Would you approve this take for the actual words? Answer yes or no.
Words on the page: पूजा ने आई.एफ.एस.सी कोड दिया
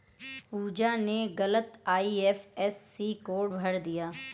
no